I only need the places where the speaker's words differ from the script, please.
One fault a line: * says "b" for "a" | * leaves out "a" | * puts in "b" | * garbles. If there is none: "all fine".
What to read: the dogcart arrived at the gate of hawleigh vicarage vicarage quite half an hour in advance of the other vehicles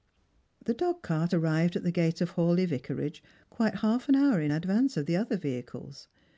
* leaves out "vicarage"